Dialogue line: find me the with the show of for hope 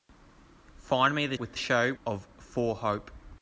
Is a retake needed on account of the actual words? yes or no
no